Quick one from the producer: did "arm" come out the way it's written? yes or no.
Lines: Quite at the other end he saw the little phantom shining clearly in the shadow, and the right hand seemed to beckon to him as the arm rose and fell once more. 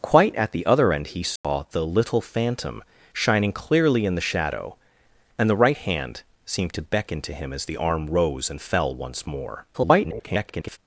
yes